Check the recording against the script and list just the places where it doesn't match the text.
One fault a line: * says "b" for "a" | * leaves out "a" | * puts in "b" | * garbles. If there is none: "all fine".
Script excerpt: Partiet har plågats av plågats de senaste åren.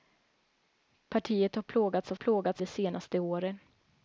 all fine